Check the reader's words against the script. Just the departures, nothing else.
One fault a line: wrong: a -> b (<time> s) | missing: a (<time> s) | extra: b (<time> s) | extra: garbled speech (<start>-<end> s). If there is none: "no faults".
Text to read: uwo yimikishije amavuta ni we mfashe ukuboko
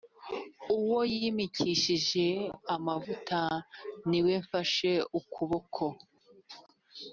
no faults